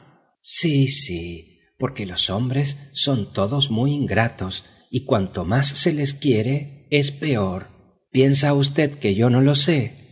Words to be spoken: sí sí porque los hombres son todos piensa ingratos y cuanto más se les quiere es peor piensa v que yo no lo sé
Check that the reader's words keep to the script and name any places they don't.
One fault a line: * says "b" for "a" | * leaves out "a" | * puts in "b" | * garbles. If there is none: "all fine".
* says "muy" for "piensa"